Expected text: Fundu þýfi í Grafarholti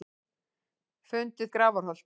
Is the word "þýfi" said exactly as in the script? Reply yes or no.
no